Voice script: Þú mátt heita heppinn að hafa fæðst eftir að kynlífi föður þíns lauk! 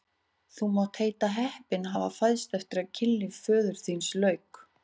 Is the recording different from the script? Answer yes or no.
no